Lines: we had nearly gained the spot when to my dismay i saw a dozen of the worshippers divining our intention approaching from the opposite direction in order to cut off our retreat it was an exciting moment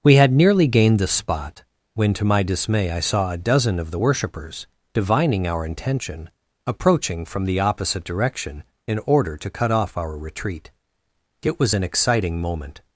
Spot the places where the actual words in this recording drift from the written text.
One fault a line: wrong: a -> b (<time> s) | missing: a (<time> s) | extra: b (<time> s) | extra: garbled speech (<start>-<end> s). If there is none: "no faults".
no faults